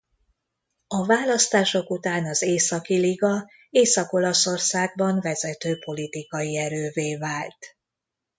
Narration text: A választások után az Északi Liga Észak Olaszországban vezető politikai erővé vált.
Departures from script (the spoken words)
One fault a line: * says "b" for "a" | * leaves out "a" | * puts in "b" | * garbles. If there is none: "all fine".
all fine